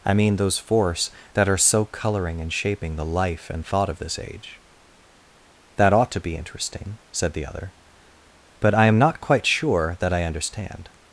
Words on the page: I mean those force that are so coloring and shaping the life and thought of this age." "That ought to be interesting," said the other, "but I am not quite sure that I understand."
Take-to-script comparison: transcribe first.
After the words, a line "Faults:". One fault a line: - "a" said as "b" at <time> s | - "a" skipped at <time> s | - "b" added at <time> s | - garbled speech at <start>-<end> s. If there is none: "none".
I mean those force that are so coloring and shaping the life and thought of this age." "That ought to be interesting," said the other, "but I am not quite sure that I understand."
Faults:
none